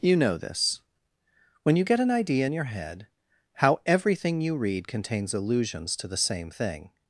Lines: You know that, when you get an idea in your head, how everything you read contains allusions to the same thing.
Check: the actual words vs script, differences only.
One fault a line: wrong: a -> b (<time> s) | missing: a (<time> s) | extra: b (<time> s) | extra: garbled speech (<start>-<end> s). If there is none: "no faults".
wrong: that -> this (0.4 s)